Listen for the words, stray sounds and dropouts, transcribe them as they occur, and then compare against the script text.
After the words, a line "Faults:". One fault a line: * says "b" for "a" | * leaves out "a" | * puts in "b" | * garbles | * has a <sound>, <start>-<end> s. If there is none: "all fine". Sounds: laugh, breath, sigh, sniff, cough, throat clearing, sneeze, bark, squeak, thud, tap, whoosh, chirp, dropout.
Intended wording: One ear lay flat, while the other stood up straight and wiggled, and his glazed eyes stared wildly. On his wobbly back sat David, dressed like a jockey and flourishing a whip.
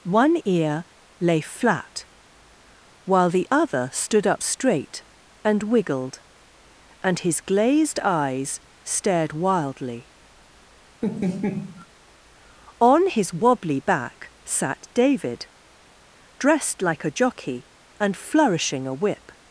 One ear lay flat, while the other stood up straight and wiggled, and his glazed eyes stared wildly. On his wobbly back sat David, dressed like a jockey and flourishing a whip.
Faults:
* has a laugh, 11.0-11.9 s